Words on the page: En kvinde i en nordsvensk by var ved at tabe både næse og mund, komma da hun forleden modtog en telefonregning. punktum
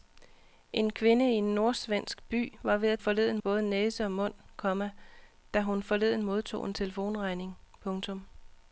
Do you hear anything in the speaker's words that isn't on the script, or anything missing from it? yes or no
yes